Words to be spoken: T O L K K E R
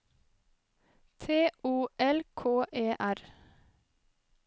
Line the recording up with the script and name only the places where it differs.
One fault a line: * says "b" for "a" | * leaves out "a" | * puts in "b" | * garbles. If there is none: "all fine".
* leaves out "K"